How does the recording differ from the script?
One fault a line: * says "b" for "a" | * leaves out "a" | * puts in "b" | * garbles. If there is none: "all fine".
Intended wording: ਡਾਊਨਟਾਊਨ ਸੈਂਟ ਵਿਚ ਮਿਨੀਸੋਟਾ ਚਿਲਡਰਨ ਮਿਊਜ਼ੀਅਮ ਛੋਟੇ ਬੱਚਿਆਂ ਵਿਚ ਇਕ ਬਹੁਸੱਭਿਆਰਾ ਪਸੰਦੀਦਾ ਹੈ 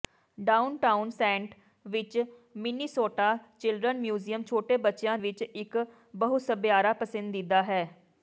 all fine